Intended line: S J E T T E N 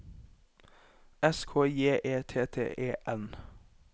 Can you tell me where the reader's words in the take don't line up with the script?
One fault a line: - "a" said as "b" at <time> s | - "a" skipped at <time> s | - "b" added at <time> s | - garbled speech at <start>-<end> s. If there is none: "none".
- "K" added at 1.4 s